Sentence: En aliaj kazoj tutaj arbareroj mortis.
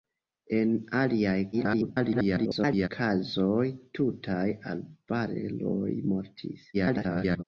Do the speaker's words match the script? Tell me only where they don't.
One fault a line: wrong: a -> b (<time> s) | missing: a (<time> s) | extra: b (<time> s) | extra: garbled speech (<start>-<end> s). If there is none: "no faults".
extra: garbled speech (1.5-2.9 s)
extra: garbled speech (6.7-7.4 s)